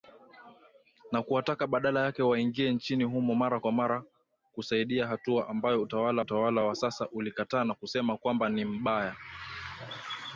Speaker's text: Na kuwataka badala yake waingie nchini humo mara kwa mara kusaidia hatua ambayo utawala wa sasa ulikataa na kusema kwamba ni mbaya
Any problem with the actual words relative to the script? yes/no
yes